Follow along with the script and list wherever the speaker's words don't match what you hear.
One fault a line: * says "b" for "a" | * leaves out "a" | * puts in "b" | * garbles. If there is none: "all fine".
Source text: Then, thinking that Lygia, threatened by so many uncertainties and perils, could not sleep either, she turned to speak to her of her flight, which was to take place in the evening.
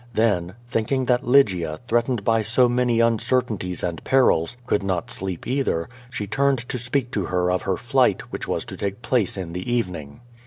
all fine